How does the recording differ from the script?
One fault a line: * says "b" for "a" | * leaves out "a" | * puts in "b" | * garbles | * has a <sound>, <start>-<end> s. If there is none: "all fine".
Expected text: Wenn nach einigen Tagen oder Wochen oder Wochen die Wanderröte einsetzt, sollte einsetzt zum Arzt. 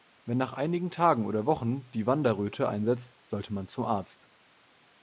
* leaves out "oder Wochen"
* says "man" for "einsetzt"